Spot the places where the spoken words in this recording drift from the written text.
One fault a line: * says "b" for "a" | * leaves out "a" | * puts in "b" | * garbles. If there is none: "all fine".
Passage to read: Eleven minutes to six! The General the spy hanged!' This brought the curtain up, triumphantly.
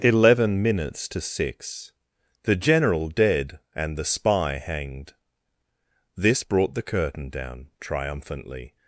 * puts in "dead and"
* says "down" for "up"